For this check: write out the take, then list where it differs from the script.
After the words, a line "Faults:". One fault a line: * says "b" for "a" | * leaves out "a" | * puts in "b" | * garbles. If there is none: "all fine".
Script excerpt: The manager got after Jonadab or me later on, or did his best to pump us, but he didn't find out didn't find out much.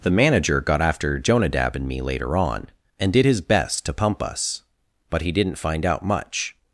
The manager got after Jonadab and me later on, and did his best to pump us, but he didn't find out much.
Faults:
* says "and" for "or"
* says "and" for "or"
* leaves out "didn't find out"